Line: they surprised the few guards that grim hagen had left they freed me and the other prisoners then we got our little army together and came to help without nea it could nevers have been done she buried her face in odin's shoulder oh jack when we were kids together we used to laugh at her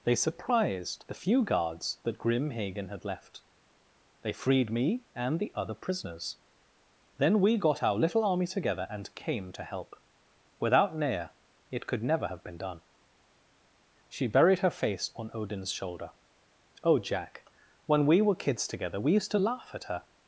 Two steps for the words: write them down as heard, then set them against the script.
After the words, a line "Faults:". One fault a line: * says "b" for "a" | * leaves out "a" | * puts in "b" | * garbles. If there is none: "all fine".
they surprised the few guards that grim hagen had left they freed me and the other prisoners then we got our little army together and came to help without nea it could never have been done she buried her face on odin's shoulder oh jack when we were kids together we used to laugh at her
Faults:
* says "never" for "nevers"
* says "on" for "in"